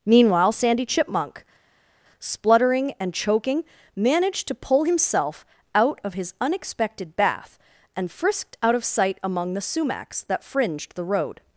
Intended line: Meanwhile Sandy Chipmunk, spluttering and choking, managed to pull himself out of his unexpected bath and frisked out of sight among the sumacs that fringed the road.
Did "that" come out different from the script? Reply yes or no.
no